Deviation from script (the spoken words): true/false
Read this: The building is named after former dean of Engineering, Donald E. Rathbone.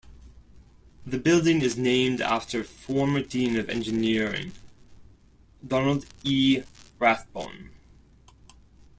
false